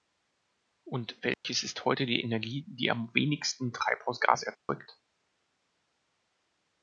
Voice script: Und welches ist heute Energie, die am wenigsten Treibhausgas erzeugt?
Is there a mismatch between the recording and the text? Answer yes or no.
yes